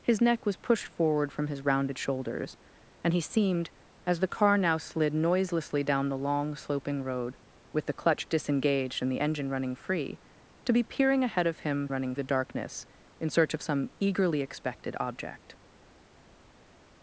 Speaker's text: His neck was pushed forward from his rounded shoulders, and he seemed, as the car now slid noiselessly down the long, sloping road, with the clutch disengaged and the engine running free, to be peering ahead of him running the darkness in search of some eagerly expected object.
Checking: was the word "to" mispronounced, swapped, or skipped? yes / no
no